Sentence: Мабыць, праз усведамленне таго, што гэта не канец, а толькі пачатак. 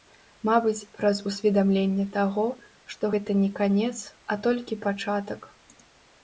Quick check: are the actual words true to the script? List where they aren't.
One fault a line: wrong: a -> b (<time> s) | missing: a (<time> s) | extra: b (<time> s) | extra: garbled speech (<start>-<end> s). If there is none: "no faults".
no faults